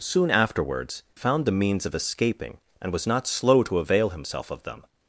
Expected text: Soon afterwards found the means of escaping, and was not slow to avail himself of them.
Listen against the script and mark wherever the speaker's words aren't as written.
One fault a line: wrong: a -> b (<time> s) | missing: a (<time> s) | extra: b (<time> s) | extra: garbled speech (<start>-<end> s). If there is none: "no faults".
no faults